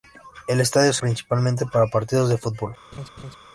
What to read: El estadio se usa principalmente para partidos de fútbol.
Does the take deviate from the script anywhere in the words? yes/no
yes